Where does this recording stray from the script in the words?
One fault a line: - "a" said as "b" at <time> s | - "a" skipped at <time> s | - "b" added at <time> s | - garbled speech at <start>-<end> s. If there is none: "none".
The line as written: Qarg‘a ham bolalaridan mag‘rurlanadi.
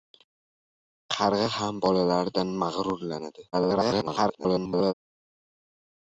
- garbled speech at 3.5-4.9 s